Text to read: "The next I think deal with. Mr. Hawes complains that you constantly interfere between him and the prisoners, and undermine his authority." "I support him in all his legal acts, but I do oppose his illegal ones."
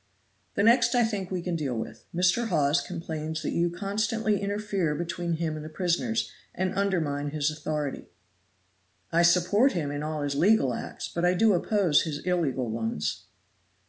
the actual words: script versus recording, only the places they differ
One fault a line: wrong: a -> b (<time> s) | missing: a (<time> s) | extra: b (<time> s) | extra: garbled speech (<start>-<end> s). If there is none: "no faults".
extra: we can (1.3 s)